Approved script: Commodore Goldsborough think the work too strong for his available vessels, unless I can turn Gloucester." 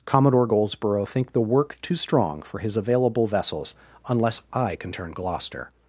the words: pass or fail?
pass